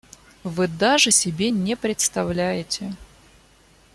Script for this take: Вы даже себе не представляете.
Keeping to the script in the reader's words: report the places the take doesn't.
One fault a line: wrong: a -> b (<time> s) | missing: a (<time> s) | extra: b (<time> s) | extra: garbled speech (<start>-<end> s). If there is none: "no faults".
no faults